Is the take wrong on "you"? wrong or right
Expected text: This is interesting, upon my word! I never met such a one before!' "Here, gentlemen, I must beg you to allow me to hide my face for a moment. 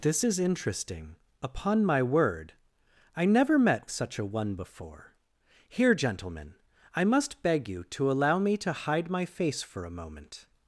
right